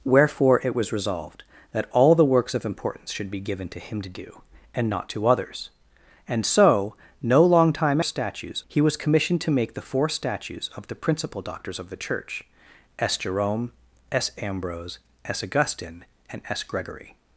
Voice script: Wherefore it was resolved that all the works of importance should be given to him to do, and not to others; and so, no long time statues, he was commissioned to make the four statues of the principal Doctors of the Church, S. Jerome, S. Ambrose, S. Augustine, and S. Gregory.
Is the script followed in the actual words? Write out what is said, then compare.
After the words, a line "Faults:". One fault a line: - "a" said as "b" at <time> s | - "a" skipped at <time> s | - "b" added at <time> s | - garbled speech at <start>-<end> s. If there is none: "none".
Wherefore it was resolved that all the works of importance should be given to him to do, and not to others; and so, no long time statues, he was commissioned to make the four statues of the principal Doctors of the Church, S. Jerome, S. Ambrose, S. Augustine, and S. Gregory.
Faults:
none